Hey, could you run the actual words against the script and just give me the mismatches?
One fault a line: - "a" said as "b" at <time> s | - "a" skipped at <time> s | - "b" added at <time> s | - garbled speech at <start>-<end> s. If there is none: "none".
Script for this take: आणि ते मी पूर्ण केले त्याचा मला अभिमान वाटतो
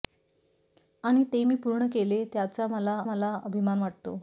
- "मला" added at 3.0 s